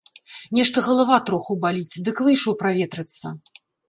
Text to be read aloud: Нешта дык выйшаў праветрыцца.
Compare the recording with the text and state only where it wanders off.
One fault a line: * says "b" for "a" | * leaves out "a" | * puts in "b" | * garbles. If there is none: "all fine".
* puts in "галава троху баліць"